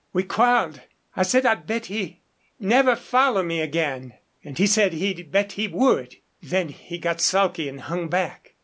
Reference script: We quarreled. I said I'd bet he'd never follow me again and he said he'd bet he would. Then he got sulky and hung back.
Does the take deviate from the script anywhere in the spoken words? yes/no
no